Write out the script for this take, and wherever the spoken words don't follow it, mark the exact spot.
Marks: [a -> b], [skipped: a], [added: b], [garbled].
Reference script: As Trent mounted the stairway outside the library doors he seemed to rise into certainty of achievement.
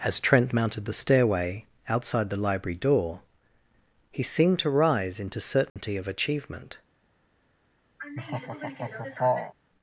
As Trent mounted the stairway outside the library [doors -> door] he seemed to rise into certainty of achievement.